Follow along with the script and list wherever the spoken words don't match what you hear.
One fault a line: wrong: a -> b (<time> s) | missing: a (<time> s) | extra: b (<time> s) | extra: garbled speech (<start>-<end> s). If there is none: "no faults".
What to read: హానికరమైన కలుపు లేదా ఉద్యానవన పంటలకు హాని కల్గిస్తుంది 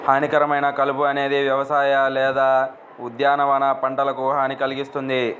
extra: అనేది వ్యవసాయ (1.0 s)